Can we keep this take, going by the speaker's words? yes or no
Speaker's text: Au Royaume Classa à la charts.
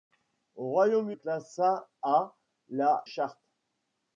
yes